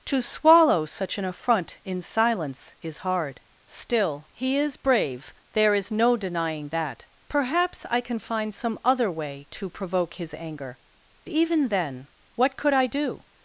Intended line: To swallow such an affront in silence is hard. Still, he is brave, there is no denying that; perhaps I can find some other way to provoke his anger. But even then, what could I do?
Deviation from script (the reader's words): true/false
true